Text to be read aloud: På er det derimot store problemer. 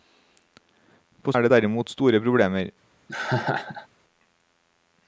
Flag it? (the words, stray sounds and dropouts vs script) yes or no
yes